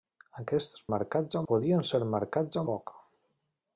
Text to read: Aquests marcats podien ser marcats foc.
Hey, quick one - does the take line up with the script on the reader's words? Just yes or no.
yes